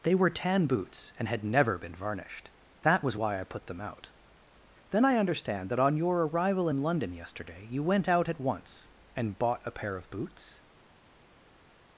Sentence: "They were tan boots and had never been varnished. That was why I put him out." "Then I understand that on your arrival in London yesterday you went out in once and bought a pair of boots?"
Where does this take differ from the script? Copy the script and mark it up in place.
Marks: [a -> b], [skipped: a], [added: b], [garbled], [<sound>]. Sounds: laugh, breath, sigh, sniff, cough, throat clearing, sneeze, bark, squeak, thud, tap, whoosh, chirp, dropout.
"They were tan boots and had never been varnished. That was why I put [him -> them] out." "Then I understand that on your arrival in London yesterday you went out [in -> at] once and bought a pair of boots?"